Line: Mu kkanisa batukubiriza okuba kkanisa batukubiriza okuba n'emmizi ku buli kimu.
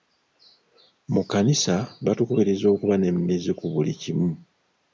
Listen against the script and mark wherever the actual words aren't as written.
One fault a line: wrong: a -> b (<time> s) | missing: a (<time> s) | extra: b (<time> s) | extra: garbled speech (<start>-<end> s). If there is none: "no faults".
missing: kkanisa batukubiriza okuba (2.9 s)